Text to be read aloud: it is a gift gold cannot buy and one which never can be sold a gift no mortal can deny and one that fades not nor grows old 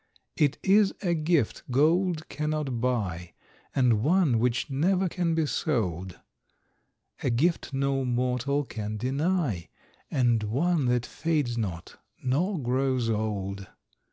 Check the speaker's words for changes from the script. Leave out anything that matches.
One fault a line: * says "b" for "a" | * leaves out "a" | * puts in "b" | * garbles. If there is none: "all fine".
all fine